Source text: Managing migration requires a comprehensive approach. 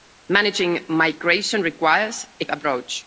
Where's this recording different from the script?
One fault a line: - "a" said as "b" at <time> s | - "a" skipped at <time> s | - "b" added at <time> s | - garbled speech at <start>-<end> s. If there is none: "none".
- "comprehensive" skipped at 2.5 s